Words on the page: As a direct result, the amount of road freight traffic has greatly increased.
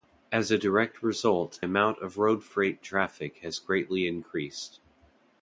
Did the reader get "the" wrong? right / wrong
wrong